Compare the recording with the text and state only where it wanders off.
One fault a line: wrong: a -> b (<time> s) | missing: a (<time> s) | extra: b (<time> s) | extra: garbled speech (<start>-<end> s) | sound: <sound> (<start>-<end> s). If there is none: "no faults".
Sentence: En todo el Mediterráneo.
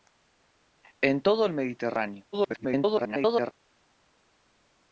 extra: garbled speech (2.3-3.5 s)